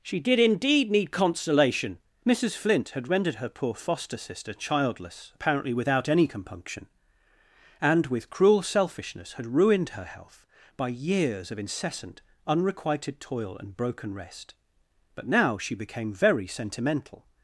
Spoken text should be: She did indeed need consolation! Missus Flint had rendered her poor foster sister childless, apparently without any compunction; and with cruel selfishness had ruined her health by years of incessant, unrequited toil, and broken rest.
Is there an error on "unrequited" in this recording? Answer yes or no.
no